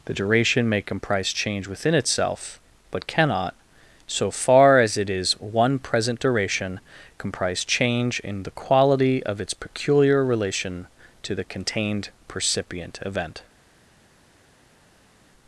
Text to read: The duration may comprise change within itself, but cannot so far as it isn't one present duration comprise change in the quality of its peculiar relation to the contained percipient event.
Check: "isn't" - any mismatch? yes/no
yes